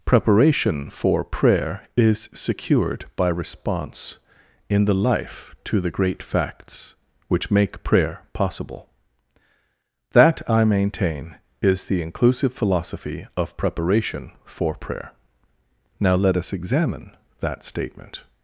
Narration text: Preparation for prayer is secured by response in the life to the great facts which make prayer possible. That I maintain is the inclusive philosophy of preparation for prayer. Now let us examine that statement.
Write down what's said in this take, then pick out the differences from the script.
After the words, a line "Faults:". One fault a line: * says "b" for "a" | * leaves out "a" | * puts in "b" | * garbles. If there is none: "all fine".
Preparation for prayer is secured by response in the life to the great facts which make prayer possible. That I maintain is the inclusive philosophy of preparation for prayer. Now let us examine that statement.
Faults:
all fine